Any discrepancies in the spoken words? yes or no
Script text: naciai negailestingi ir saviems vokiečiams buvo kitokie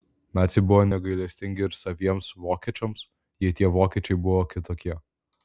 yes